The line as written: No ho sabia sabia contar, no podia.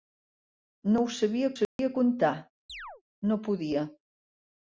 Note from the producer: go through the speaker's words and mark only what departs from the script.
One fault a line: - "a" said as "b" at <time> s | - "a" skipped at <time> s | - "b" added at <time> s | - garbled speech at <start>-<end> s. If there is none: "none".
none